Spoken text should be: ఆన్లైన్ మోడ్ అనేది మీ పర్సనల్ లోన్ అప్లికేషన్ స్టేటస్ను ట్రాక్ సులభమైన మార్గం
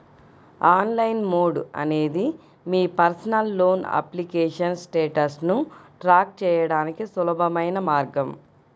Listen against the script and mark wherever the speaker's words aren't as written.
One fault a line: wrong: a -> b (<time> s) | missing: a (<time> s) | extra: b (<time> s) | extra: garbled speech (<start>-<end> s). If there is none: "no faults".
extra: చేయడానికి (6.4 s)